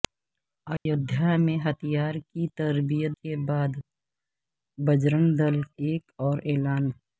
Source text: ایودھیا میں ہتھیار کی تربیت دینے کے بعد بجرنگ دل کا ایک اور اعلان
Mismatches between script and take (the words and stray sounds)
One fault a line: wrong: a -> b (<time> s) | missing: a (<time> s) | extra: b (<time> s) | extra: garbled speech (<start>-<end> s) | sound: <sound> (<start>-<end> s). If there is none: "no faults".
sound: dropout (0.8-0.9 s)
missing: دینے (3.1 s)
missing: کا (5.6 s)